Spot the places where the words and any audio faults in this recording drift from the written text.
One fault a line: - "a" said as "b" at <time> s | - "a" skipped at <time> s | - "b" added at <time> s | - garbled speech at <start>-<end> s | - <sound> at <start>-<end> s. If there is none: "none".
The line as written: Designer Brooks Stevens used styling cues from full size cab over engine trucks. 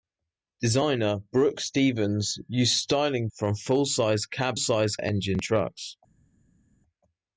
- "cues" skipped at 3.3 s
- "over" said as "size" at 4.6 s